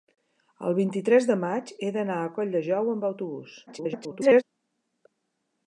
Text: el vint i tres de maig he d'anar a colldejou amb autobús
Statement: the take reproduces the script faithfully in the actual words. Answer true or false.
false